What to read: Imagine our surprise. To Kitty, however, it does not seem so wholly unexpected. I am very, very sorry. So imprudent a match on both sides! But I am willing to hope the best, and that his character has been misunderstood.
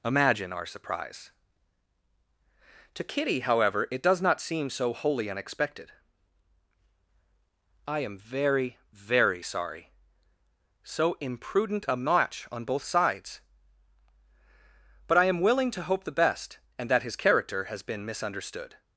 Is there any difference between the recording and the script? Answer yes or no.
no